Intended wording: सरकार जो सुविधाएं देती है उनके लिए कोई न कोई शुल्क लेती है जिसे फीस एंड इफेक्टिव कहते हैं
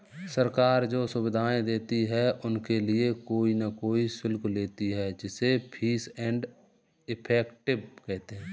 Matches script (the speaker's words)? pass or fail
pass